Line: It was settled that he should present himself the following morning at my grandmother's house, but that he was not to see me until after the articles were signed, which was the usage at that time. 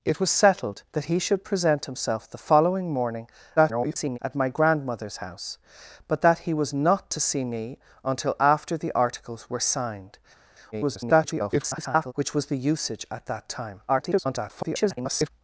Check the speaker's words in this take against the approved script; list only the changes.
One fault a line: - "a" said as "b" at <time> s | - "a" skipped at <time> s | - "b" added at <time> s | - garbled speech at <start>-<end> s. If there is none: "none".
- garbled speech at 3.6-4.2 s
- garbled speech at 10.7-12.1 s
- garbled speech at 13.9-15.3 s